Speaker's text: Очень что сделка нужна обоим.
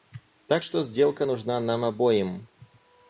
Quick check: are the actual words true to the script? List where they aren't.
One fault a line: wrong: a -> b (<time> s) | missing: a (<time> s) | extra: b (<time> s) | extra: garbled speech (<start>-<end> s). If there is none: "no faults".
wrong: Очень -> Так (0.5 s)
extra: нам (1.6 s)